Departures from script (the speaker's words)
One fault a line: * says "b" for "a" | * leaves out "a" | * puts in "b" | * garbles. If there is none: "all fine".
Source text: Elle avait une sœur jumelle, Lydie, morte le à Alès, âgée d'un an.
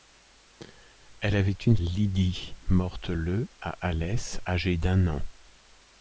* leaves out "sœur jumelle"